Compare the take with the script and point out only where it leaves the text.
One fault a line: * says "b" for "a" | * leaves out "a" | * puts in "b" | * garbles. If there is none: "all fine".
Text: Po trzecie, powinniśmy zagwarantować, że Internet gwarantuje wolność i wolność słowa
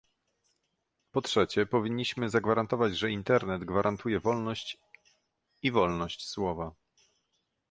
all fine